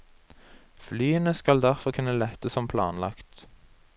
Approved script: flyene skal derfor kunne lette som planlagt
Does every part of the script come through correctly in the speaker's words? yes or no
yes